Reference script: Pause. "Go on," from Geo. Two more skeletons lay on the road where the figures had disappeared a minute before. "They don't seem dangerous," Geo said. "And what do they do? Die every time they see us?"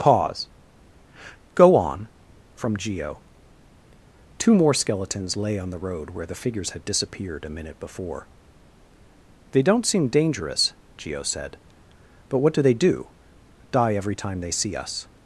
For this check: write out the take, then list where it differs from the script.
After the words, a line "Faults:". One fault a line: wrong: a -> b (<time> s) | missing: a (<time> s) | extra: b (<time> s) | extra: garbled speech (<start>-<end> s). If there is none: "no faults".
Pause. "Go on," from Geo. Two more skeletons lay on the road where the figures had disappeared a minute before. "They don't seem dangerous," Geo said. "But what do they do? Die every time they see us?"
Faults:
wrong: And -> But (12.3 s)